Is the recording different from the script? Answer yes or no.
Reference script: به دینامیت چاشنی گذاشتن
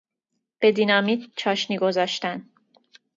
no